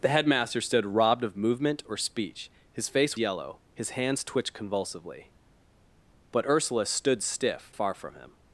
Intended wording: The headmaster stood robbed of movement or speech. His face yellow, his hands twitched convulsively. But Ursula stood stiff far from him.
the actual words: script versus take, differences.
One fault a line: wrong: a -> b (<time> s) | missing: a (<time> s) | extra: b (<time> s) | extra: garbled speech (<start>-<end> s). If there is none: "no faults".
no faults